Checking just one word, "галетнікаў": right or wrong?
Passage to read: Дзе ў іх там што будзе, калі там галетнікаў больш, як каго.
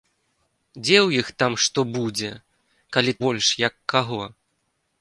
wrong